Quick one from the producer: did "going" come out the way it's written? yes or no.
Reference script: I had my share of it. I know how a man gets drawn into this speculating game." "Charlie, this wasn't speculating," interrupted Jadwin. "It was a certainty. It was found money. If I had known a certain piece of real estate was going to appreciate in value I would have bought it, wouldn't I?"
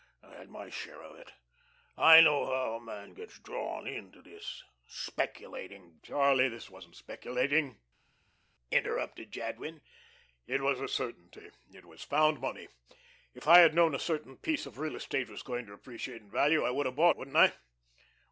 yes